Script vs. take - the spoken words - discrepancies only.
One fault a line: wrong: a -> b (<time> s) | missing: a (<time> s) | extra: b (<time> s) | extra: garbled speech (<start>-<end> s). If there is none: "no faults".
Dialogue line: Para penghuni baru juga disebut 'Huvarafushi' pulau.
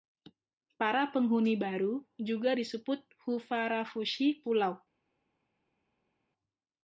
no faults